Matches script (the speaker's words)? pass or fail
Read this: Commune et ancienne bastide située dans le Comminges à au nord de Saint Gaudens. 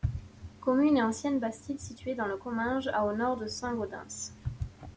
pass